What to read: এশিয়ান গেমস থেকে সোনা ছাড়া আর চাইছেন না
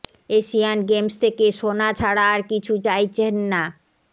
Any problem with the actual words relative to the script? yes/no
yes